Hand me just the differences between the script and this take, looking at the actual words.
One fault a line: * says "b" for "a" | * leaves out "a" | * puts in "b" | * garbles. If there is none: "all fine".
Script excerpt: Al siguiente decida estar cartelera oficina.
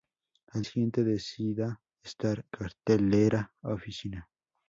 all fine